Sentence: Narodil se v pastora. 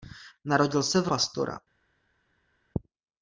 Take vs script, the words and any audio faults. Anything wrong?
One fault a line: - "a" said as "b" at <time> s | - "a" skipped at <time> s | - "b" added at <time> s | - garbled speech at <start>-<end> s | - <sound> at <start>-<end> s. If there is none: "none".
none